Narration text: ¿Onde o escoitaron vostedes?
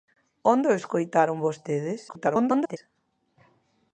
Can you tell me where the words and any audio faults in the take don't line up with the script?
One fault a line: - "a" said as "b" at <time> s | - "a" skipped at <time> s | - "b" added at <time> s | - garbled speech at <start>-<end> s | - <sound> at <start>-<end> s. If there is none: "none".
- garbled speech at 2.1-2.8 s